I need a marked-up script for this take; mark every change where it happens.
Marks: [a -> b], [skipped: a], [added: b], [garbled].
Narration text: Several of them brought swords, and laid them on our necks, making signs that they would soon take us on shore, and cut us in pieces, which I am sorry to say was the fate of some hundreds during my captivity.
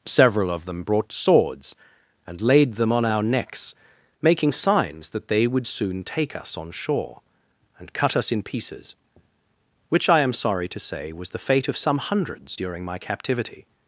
Several of them brought swords, and laid them on our necks, making signs that they would soon take us on shore, and cut us in pieces, which I am sorry to say was the fate of some hundreds during my captivity.